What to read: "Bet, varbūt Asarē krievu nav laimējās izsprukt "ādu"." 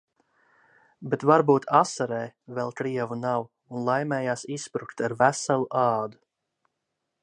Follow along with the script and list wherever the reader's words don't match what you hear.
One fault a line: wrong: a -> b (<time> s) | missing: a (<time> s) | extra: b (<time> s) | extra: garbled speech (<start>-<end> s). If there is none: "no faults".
extra: vēl (2.6 s)
extra: un (3.5 s)
extra: ar veselu (5.1 s)